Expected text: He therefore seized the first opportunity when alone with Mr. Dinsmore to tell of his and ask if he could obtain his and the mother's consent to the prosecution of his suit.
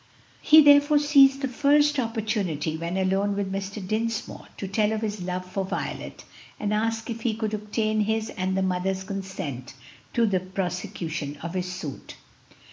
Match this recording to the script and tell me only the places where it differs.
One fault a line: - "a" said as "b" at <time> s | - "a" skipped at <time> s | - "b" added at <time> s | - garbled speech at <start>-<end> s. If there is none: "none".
- "love for Violet" added at 5.2 s